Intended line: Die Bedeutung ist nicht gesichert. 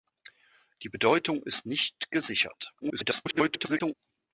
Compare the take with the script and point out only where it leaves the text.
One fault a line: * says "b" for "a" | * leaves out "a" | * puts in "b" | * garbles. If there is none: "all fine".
* garbles